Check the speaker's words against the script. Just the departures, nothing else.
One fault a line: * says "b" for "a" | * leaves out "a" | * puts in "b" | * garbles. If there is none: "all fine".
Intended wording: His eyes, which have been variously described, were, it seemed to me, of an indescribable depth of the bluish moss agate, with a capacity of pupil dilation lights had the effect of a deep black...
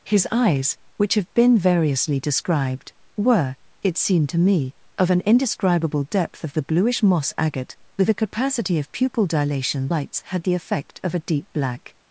all fine